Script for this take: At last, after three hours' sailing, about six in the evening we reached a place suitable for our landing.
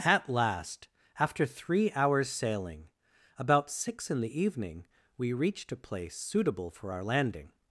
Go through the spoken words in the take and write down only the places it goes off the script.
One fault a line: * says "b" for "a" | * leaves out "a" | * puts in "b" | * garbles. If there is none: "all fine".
all fine